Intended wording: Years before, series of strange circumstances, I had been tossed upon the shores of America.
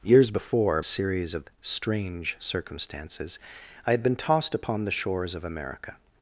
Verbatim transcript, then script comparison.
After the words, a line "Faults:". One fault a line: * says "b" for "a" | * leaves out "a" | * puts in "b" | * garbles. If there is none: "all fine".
Years before, series of strange circumstances, I had been tossed upon the shores of America.
Faults:
all fine